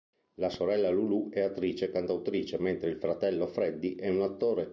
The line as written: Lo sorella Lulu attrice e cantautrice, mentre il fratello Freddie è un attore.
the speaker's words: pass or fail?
fail